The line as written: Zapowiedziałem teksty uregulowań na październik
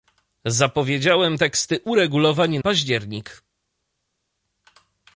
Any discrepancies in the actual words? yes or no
yes